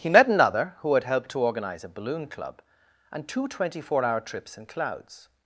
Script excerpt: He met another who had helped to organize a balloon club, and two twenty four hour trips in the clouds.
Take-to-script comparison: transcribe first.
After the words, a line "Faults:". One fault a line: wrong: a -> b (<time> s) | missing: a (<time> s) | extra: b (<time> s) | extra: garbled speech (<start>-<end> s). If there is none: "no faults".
He met another who had helped to organize a balloon club, and two twenty four hour trips in clouds.
Faults:
missing: the (4.7 s)